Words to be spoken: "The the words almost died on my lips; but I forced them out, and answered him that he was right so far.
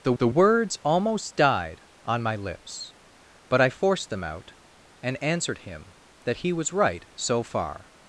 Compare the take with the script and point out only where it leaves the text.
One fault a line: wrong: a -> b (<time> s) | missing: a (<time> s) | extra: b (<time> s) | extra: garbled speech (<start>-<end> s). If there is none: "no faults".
no faults